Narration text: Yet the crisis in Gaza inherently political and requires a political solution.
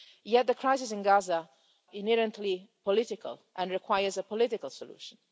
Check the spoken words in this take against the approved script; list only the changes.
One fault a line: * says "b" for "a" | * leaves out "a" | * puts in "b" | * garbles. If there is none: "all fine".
all fine